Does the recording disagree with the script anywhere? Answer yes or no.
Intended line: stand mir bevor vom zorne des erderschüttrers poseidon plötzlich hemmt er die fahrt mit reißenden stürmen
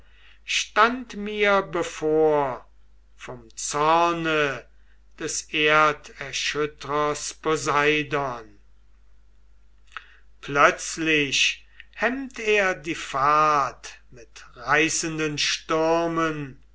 no